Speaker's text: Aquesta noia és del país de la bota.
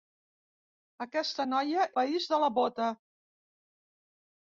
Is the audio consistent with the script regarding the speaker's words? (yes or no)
no